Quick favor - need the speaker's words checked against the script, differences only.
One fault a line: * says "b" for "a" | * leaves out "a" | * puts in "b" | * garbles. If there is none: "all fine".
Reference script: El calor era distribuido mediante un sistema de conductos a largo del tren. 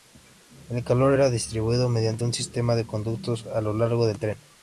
* puts in "lo"